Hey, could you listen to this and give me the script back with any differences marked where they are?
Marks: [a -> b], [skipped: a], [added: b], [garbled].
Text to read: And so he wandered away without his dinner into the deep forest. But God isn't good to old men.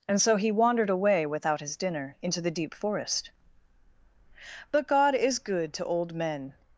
And so he wandered away without his dinner into the deep forest. But God [isn't -> is] good to old men.